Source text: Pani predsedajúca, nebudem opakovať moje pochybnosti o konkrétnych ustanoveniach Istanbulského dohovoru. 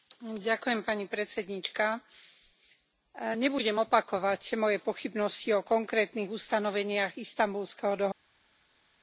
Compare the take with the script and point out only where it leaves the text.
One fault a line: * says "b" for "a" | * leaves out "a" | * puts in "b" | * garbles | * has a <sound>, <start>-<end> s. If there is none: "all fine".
all fine